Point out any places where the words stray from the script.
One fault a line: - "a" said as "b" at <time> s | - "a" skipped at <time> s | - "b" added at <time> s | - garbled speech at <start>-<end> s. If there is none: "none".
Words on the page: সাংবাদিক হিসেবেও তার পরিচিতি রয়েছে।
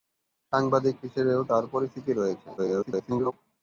- garbled speech at 2.6-3.3 s